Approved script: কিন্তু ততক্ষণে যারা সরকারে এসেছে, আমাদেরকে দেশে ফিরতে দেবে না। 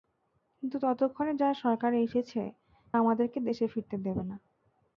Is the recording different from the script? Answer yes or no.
no